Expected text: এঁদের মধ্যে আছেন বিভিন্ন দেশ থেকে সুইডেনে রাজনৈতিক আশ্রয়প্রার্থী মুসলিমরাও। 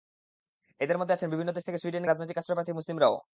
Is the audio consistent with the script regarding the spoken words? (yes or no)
yes